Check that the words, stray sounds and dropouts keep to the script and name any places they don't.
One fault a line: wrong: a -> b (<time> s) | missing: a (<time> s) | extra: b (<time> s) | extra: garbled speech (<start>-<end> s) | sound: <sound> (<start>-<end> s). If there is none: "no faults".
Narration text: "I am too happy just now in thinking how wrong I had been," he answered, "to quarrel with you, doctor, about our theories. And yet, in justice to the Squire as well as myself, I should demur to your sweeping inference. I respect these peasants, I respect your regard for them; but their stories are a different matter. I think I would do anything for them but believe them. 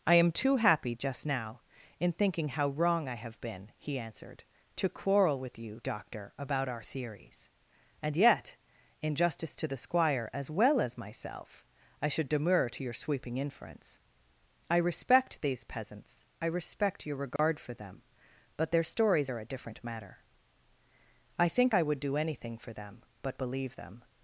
wrong: had -> have (3.1 s)
sound: dropout (17.4-17.4 s)